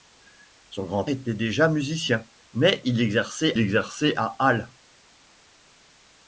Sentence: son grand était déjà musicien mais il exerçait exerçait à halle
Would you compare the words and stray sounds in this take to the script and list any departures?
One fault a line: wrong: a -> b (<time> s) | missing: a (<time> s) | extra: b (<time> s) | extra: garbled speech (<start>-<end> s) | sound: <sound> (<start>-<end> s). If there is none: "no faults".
no faults